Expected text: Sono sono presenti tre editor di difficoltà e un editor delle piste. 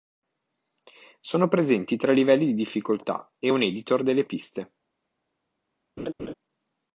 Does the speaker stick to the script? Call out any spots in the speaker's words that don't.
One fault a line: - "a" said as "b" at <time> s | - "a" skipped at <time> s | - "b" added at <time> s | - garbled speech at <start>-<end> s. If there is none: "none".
- "sono" skipped at 1.5 s
- "editor" said as "livelli" at 2.1 s